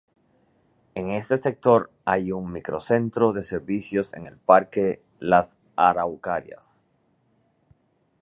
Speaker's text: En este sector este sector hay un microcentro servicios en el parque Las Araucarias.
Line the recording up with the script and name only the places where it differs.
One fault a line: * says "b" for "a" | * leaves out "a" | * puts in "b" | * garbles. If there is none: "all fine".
* leaves out "este sector"
* puts in "de"